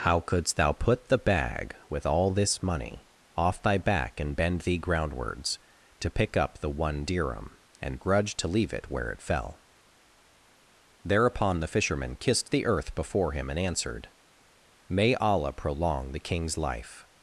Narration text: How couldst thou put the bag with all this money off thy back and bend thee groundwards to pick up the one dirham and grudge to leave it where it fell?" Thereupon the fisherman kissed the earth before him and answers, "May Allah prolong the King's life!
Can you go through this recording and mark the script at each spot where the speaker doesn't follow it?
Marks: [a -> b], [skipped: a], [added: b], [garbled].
How couldst thou put the bag with all this money off thy back and bend thee groundwards to pick up the one dirham and grudge to leave it where it fell?" Thereupon the fisherman kissed the earth before him and [answers, -> answered] "May Allah prolong the King's life!